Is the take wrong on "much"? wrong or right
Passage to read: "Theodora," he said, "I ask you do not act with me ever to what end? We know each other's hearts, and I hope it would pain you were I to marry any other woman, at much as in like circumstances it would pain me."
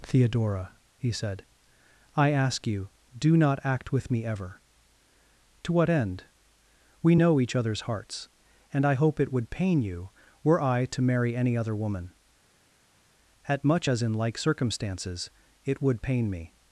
right